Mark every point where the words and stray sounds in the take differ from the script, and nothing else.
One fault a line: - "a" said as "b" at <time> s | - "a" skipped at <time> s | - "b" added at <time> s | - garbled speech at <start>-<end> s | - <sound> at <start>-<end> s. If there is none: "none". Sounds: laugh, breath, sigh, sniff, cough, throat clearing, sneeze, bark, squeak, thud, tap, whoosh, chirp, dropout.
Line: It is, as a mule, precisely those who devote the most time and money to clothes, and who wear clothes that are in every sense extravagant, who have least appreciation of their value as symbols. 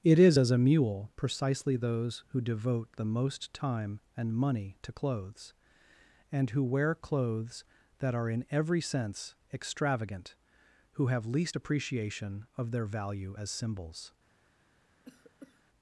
- cough at 15.0-15.6 s